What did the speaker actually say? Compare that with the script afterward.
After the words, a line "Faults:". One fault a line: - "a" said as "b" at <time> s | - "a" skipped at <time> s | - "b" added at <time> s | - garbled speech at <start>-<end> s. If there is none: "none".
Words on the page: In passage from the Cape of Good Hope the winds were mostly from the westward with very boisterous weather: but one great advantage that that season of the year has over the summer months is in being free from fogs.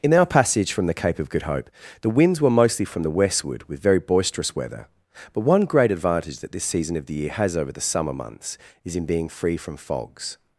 In our passage from the Cape of Good Hope the winds were mostly from the westward with very boisterous weather: but one great advantage that this season of the year has over the summer months is in being free from fogs.
Faults:
- "our" added at 0.1 s
- "that" said as "this" at 6.5 s